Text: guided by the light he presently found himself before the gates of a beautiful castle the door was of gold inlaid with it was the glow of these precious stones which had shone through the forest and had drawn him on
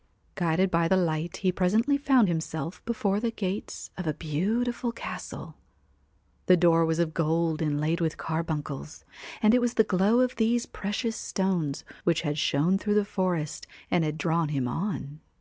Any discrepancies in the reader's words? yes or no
yes